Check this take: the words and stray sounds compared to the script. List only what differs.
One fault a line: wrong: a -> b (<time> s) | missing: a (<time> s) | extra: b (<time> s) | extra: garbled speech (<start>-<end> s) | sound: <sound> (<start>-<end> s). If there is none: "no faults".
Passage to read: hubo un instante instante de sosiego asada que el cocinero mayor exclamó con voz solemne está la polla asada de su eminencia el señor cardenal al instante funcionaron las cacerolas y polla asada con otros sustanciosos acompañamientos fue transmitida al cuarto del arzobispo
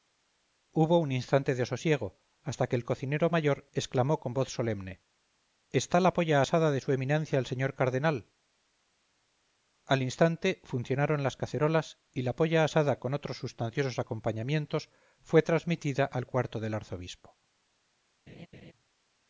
missing: instante (1.5 s)
wrong: asada -> hasta (2.4 s)
extra: la (12.2 s)
sound: laugh (18.3-18.7 s)